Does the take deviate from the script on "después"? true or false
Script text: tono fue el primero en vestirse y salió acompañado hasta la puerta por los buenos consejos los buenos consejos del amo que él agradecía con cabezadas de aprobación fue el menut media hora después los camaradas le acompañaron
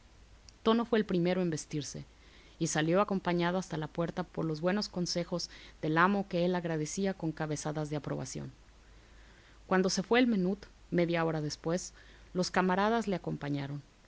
false